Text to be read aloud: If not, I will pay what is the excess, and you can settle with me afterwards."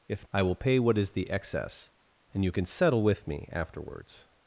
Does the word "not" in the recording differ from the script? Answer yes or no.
yes